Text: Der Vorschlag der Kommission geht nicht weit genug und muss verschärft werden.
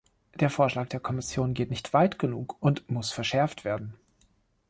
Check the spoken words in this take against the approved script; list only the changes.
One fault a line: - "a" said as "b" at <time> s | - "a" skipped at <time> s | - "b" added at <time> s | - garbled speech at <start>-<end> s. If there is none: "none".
none